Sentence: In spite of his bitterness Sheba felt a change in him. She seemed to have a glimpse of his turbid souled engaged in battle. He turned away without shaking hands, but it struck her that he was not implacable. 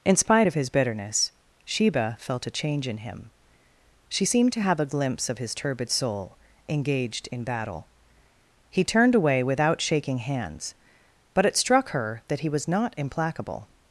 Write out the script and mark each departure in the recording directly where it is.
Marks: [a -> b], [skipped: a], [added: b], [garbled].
In spite of his bitterness Sheba felt a change in him. She seemed to have a glimpse of his turbid [souled -> soul] engaged in battle. He turned away without shaking hands, but it struck her that he was not implacable.